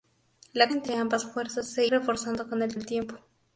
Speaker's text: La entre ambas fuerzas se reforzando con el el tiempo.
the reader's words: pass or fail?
pass